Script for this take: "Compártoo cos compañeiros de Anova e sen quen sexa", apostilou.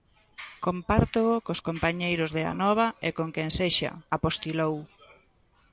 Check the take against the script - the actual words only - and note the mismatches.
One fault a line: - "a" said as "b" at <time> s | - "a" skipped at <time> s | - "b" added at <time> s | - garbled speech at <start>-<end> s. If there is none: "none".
- "sen" said as "con" at 3.2 s